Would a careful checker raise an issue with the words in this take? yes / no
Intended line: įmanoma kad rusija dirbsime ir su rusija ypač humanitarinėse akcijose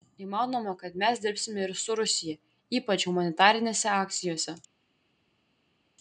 yes